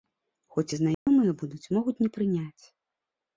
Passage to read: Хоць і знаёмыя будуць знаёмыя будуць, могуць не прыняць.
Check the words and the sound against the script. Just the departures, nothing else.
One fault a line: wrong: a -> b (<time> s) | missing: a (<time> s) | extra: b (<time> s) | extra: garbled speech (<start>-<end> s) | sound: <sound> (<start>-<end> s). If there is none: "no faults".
sound: dropout (0.9-1.1 s)
missing: знаёмыя будуць (1.6 s)